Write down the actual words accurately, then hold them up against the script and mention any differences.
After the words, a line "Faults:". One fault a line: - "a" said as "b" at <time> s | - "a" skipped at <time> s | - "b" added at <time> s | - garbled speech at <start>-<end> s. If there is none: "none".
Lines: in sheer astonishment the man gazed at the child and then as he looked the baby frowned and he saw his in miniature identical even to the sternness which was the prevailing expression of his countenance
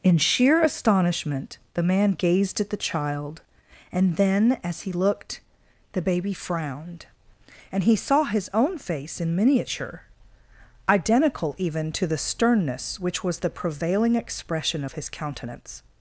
in sheer astonishment the man gazed at the child and then as he looked the baby frowned and he saw his own face in miniature identical even to the sternness which was the prevailing expression of his countenance
Faults:
- "own face" added at 8.5 s